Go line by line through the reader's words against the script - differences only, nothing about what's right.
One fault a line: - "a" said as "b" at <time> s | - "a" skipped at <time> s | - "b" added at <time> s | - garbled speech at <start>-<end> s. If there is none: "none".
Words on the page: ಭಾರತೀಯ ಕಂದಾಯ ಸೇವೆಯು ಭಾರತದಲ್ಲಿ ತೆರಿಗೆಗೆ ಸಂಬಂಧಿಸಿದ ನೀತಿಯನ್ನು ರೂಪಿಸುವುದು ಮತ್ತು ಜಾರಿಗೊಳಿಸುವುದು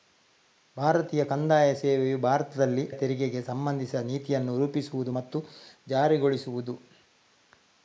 none